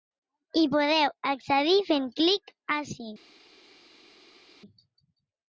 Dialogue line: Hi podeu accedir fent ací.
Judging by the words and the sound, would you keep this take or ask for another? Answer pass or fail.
fail